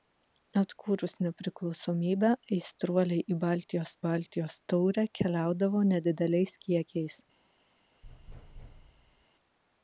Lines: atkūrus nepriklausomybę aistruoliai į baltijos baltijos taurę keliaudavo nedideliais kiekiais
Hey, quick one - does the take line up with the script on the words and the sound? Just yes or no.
no